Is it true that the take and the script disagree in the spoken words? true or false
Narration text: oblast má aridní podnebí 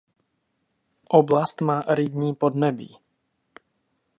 false